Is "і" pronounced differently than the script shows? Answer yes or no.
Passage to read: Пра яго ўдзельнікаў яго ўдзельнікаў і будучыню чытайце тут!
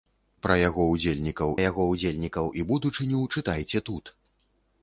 no